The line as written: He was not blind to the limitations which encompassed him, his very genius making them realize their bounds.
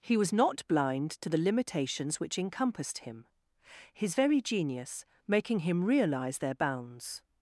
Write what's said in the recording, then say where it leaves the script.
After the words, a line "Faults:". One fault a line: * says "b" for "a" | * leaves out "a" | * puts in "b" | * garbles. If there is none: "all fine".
He was not blind to the limitations which encompassed him, his very genius making him realize their bounds.
Faults:
* says "him" for "them"